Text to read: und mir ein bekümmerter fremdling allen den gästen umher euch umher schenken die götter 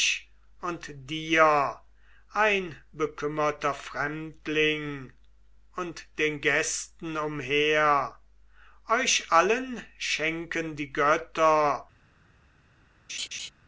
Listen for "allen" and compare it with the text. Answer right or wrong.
wrong